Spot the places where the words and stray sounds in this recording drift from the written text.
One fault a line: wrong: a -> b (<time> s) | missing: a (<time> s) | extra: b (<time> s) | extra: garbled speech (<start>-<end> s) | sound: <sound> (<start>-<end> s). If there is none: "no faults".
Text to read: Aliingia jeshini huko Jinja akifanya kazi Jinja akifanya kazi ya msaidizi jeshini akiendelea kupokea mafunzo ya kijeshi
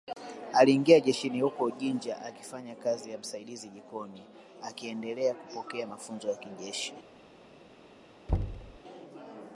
missing: Jinja akifanya kazi (3.1 s)
wrong: jeshini -> jikoni (3.7 s)
sound: thud (8.3-8.8 s)